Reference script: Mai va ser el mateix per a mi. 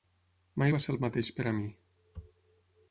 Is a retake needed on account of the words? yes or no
no